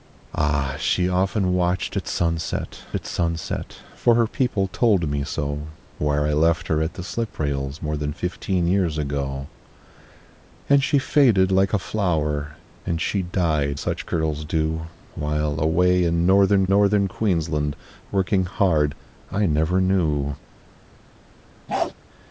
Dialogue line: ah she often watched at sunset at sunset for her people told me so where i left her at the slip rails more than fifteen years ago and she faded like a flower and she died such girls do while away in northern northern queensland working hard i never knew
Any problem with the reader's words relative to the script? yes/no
no